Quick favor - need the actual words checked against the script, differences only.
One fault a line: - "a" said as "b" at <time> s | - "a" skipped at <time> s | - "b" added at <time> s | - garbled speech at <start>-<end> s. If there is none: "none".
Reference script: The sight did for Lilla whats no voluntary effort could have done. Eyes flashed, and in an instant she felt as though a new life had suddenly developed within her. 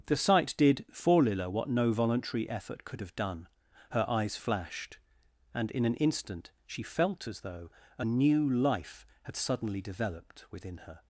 - "whats" said as "what" at 1.5 s
- "Her" added at 3.9 s